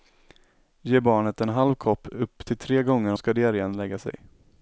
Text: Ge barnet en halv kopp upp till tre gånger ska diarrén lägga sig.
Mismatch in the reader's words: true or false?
false